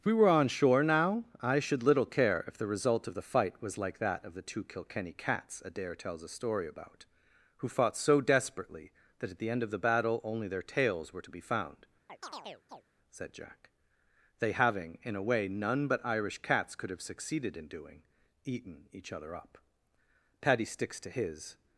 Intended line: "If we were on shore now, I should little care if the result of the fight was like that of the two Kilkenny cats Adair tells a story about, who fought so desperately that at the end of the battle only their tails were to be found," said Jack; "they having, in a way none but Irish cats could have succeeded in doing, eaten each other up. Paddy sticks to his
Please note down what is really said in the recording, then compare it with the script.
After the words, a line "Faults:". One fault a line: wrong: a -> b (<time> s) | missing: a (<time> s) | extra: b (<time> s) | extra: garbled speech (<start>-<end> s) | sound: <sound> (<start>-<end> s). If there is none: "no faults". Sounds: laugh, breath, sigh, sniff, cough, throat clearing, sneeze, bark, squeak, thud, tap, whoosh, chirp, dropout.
"If we were on shore now, I should little care if the result of the fight was like that of the two Kilkenny cats Adair tells a story about, who fought so desperately that at the end of the battle only their tails were to be found," said Jack; "they having, in a way none but Irish cats could have succeeded in doing, eaten each other up. Paddy sticks to his
Faults:
sound: chirp (12.1-12.8 s)